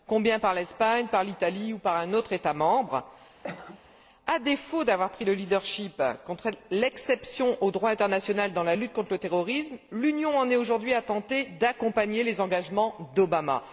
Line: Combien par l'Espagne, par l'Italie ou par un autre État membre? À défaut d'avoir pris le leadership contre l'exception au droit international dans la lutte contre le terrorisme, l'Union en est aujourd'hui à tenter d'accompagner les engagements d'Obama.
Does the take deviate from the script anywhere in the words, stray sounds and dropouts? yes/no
yes